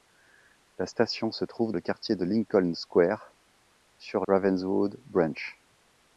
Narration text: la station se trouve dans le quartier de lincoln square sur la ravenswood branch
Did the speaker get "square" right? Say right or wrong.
right